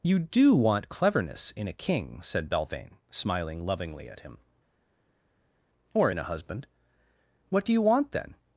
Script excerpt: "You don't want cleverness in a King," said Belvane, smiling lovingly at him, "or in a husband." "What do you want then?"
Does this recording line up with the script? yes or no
no